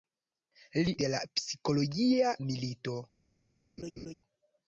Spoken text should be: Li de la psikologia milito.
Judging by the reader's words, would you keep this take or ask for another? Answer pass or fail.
pass